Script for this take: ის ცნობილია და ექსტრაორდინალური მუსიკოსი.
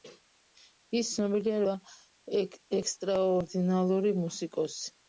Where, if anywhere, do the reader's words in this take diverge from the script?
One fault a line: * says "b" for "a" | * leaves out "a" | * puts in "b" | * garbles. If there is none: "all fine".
all fine